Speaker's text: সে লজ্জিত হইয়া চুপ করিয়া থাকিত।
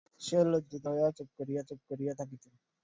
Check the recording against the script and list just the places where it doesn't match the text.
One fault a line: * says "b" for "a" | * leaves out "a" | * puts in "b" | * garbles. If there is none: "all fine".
* puts in "চুপ করিয়া"